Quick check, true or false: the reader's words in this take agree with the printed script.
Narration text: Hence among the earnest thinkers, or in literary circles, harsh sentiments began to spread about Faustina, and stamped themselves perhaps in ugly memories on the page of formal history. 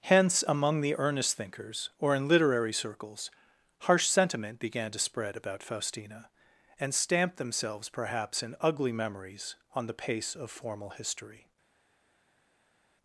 false